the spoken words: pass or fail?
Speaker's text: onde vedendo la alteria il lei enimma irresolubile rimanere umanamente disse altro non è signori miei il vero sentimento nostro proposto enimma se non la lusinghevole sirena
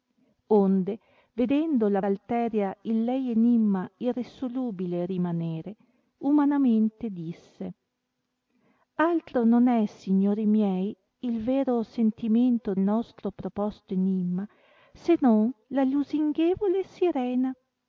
pass